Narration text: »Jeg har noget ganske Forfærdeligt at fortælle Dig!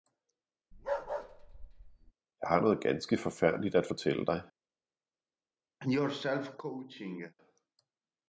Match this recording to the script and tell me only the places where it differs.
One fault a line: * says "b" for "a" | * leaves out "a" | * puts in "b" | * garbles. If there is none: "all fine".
all fine